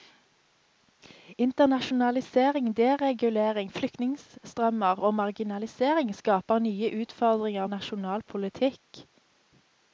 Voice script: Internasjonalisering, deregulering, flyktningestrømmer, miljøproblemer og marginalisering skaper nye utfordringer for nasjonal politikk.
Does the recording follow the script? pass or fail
fail